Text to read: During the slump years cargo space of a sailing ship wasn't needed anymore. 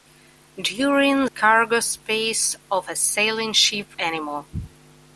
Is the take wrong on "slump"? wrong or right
wrong